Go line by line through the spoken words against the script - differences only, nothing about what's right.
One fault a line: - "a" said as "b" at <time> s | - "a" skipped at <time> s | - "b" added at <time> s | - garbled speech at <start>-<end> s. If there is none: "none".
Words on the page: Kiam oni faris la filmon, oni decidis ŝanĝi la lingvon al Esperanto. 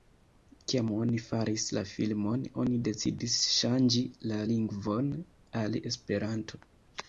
none